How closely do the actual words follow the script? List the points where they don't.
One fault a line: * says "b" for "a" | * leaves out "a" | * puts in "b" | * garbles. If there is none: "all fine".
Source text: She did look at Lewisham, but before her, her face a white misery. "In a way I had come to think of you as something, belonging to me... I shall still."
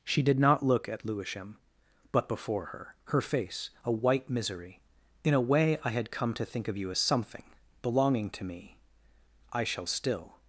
* puts in "not"